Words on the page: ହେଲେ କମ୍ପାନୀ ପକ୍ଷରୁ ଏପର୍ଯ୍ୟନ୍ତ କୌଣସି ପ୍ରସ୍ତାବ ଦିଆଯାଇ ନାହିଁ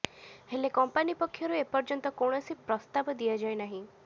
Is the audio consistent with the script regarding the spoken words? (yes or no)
yes